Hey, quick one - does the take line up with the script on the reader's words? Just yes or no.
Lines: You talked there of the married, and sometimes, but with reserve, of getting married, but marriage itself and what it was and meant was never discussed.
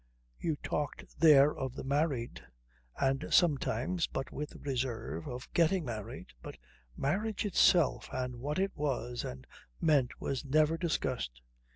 yes